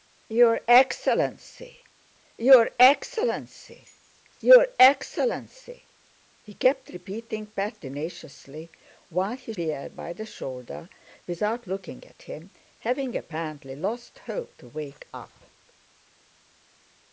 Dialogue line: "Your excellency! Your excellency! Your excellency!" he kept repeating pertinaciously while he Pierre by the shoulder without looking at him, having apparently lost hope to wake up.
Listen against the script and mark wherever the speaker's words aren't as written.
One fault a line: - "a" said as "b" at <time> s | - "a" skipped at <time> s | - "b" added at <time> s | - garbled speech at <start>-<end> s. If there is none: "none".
none